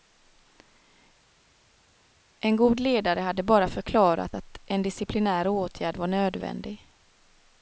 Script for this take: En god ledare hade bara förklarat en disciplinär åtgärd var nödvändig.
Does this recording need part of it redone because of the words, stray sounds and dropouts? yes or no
yes